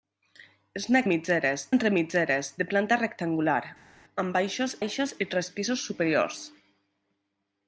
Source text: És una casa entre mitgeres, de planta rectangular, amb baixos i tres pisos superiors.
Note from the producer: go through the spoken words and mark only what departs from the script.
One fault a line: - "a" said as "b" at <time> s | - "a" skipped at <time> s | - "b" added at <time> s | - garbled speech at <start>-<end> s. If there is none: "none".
- "casa" said as "mitgeres" at 1.1 s
- "baixos" added at 4.8 s